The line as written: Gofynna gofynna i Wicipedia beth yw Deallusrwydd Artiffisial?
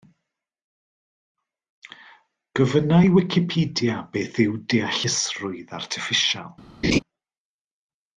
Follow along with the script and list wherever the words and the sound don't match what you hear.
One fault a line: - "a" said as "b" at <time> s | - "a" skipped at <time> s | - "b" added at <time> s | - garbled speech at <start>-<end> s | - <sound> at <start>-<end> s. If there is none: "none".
- "gofynna" skipped at 3.0 s
- laugh at 6.8-7.0 s